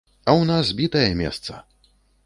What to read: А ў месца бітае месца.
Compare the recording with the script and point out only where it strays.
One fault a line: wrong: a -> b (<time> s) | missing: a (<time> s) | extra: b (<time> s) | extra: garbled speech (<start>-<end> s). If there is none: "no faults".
wrong: месца -> нас (0.5 s)